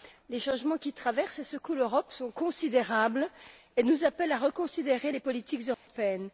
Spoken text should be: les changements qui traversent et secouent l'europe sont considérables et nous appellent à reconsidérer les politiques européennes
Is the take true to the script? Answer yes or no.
yes